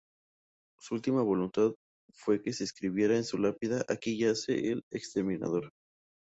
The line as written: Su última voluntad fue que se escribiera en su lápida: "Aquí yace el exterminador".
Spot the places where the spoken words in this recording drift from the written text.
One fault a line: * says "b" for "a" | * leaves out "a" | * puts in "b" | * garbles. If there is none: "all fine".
all fine